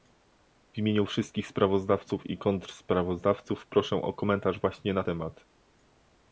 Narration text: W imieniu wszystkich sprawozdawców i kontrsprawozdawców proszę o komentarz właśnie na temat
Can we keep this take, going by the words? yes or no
yes